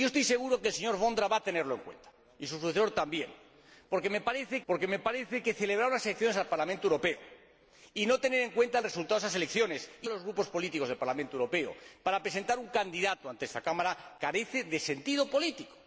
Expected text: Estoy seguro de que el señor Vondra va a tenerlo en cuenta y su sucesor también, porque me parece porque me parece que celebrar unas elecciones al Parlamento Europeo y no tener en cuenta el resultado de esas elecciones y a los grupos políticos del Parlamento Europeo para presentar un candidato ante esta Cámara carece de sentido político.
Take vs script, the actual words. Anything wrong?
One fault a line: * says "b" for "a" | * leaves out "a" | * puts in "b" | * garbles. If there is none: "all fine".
all fine